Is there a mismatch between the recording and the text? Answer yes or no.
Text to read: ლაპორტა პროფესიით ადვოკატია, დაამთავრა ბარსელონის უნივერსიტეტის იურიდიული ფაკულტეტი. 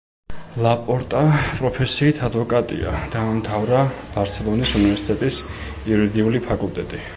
no